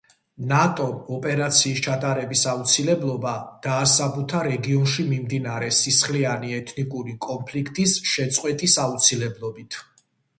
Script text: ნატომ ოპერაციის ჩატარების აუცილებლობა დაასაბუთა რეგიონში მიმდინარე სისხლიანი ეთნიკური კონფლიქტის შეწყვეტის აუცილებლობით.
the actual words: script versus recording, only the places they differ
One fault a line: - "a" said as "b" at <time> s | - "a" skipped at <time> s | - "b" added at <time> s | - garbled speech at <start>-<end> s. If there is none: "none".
none